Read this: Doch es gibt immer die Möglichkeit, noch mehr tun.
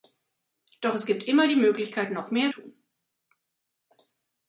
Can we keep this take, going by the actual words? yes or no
yes